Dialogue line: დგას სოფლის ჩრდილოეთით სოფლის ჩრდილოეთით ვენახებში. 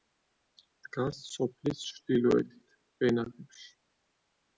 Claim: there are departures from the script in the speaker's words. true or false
true